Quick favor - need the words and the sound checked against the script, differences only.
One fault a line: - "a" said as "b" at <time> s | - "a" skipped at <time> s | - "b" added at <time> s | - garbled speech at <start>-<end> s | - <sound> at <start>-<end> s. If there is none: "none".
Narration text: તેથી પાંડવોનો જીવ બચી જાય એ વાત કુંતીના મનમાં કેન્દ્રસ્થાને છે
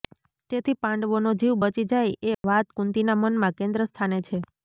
- dropout at 2.3-2.4 s